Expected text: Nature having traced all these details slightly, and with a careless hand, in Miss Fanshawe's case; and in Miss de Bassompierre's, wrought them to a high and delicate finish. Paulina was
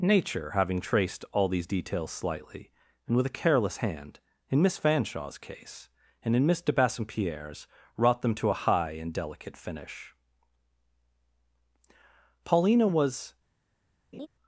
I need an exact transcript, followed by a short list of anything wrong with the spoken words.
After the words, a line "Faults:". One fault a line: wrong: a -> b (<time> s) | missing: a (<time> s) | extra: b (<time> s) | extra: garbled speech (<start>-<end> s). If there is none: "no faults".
Nature having traced all these details slightly, and with a careless hand, in Miss Fanshawe's case; and in Miss de Bassompierre's, wrought them to a high and delicate finish. Paulina was
Faults:
no faults